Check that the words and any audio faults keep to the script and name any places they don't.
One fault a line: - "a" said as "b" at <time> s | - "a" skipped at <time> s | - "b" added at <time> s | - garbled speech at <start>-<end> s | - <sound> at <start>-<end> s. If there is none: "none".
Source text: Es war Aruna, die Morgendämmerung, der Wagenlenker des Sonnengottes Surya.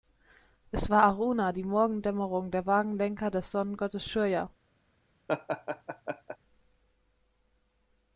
- laugh at 5.3-6.4 s